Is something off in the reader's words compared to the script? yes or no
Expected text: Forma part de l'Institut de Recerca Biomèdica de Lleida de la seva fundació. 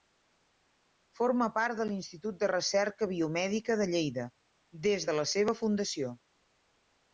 yes